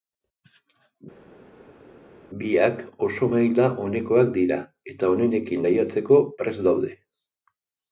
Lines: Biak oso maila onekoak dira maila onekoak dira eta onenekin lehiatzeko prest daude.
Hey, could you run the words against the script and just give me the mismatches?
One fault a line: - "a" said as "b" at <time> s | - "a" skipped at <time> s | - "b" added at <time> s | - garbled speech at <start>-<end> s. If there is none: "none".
- "maila onekoak dira" skipped at 4.6 s